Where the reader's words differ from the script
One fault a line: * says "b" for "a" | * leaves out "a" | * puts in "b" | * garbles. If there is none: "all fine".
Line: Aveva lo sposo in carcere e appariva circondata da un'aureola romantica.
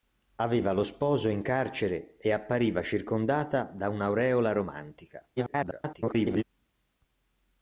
* garbles